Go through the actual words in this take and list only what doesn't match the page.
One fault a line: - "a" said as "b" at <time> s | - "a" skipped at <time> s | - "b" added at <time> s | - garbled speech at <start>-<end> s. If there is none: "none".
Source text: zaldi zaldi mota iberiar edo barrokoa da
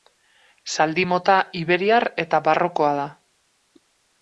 - "zaldi" skipped at 1.0 s
- "edo" said as "eta" at 2.3 s